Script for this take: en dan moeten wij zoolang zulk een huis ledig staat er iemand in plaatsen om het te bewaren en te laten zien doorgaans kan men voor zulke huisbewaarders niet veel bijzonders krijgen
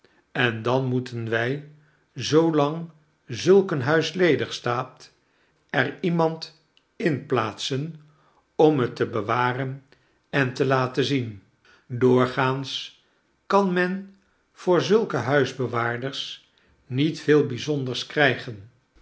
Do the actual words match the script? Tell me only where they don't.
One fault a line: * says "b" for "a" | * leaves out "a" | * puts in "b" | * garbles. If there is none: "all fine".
all fine